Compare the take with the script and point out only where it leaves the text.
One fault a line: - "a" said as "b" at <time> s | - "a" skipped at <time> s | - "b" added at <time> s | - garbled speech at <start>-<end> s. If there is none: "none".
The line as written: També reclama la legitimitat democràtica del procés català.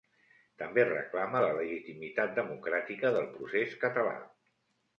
none